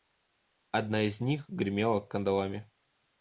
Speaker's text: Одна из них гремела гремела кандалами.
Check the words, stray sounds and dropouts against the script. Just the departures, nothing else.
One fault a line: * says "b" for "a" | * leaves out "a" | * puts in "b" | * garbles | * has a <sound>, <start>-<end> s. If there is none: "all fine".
* leaves out "гремела"